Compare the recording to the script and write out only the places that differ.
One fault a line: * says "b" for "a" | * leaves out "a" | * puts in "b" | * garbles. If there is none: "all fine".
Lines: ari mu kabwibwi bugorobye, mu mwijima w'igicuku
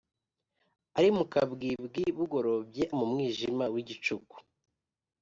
all fine